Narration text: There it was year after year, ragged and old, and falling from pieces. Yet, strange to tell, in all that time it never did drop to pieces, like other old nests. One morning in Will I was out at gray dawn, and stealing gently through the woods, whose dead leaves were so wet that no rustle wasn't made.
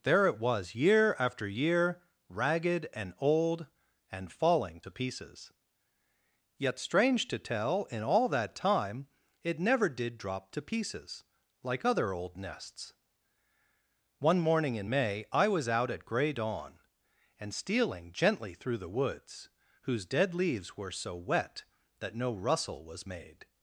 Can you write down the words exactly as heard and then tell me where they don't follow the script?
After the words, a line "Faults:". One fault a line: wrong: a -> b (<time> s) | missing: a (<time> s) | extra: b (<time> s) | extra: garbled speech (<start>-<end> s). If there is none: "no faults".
There it was year after year, ragged and old, and falling to pieces. Yet, strange to tell, in all that time it never did drop to pieces, like other old nests. One morning in May I was out at gray dawn, and stealing gently through the woods, whose dead leaves were so wet that no rustle was made.
Faults:
wrong: from -> to (4.8 s)
wrong: Will -> May (14.9 s)
wrong: wasn't -> was (22.8 s)